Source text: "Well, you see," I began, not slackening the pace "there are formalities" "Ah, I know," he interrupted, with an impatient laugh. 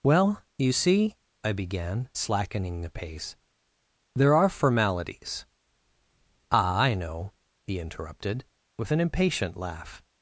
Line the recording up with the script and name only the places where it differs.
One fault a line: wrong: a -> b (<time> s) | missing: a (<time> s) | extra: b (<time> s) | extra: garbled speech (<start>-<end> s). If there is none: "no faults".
missing: not (2.1 s)